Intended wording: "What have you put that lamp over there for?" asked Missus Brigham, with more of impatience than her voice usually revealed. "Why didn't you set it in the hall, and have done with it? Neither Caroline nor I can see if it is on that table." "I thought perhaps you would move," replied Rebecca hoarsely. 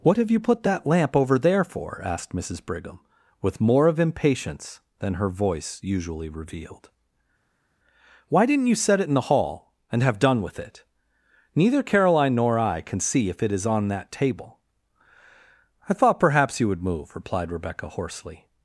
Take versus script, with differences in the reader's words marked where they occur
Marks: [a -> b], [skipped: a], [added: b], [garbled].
"What have you put that lamp over there for?" asked Missus Brigham, with more of impatience than her voice usually revealed. "Why didn't you set it in the hall, and have done with it? Neither Caroline nor I can see if it is on that table." "I thought perhaps you would move," replied Rebecca hoarsely.